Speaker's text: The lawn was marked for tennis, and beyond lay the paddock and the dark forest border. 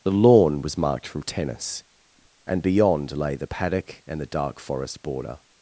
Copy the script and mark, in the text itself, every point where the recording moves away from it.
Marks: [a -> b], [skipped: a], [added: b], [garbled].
The lawn was marked [for -> from] tennis, and beyond lay the paddock and the dark forest border.